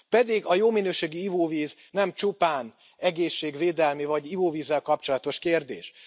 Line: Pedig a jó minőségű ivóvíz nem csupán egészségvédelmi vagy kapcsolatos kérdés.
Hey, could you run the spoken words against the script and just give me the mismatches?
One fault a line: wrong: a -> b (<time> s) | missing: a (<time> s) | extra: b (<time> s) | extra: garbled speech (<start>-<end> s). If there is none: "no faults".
extra: ivóvízzel (4.3 s)